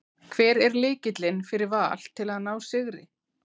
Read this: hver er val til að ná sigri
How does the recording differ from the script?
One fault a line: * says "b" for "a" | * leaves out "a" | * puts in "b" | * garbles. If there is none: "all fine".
* puts in "lykillinn fyrir"